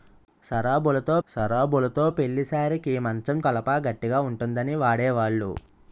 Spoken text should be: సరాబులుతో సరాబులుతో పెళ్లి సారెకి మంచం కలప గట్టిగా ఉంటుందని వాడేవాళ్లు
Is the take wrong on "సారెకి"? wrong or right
right